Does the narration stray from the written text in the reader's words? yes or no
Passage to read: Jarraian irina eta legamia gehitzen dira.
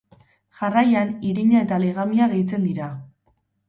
no